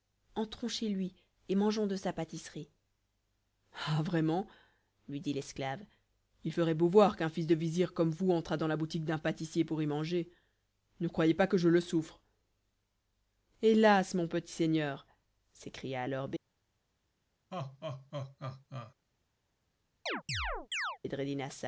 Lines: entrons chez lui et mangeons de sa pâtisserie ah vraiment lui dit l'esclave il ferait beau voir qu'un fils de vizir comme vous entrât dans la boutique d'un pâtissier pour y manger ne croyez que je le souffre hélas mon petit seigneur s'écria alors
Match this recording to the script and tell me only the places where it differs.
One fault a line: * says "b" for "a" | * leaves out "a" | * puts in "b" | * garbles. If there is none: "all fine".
* puts in "pas"